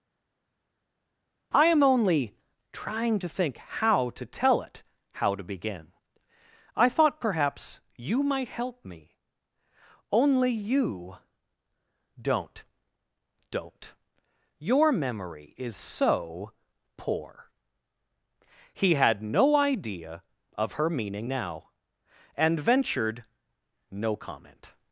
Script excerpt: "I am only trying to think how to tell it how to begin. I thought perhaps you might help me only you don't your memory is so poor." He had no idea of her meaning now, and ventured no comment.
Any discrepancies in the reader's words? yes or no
yes